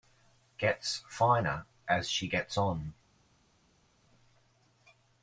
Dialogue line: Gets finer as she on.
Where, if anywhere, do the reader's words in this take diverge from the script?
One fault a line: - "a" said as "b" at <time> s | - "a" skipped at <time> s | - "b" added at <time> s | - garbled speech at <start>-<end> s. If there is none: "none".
- "gets" added at 2.2 s